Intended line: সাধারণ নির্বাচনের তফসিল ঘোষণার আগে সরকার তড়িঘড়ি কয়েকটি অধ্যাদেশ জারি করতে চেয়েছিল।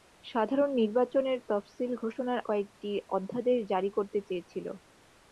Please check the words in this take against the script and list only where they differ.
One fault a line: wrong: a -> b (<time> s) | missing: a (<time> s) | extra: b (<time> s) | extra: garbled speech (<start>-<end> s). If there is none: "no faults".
missing: আগে সরকার তড়িঘড়ি (2.4 s)